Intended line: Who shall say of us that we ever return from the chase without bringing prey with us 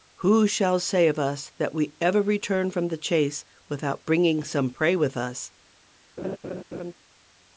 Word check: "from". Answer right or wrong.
right